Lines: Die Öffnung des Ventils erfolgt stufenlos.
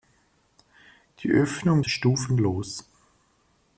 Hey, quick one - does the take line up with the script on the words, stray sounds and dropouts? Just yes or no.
no